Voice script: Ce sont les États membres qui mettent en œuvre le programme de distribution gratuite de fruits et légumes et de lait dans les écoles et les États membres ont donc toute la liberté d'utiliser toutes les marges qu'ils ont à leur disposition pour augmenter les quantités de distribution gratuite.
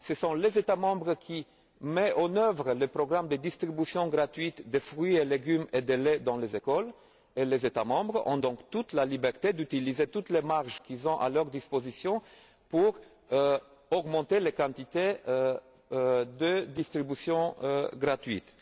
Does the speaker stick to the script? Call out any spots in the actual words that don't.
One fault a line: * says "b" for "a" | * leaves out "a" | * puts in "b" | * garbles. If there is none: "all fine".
all fine